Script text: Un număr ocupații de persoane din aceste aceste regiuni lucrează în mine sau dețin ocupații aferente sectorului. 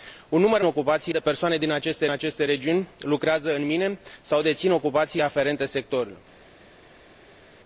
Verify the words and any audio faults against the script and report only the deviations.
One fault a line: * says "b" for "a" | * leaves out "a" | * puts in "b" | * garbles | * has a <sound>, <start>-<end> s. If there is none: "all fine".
all fine